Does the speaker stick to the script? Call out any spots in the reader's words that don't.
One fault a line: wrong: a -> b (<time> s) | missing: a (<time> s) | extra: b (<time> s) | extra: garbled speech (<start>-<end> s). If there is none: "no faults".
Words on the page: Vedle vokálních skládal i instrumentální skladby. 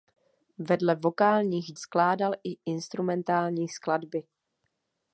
no faults